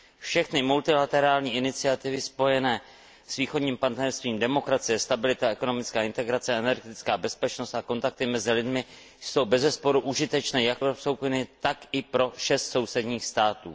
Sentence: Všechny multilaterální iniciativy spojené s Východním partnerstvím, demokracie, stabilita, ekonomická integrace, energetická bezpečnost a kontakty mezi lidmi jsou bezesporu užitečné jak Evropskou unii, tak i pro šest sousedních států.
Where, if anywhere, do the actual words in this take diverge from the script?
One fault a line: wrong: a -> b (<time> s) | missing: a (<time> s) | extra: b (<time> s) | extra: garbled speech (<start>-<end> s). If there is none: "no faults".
no faults